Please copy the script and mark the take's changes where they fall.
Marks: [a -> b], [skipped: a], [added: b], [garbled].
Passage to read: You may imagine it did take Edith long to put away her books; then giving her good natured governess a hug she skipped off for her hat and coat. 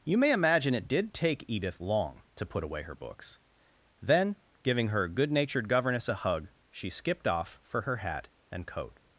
You may imagine it did take Edith long to put away her books; then giving her good natured governess a hug she skipped off for her hat and coat.